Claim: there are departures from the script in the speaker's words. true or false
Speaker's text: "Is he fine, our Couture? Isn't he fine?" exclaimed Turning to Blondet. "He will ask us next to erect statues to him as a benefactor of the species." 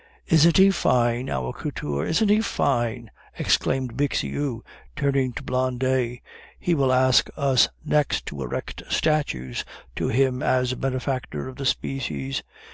true